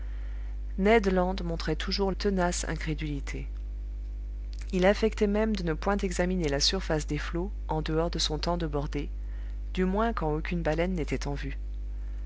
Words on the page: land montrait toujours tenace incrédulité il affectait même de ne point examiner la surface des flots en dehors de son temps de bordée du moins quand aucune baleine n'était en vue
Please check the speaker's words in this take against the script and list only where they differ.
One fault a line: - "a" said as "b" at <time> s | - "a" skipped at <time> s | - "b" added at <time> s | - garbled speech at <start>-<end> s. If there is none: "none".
none